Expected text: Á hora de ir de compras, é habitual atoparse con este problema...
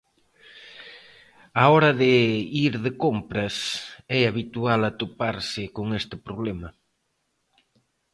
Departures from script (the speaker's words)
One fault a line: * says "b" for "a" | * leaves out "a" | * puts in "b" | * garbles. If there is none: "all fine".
all fine